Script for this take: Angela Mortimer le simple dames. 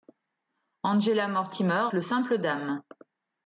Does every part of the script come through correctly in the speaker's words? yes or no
yes